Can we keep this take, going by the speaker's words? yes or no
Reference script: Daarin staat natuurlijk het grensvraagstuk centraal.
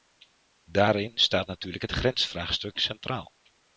yes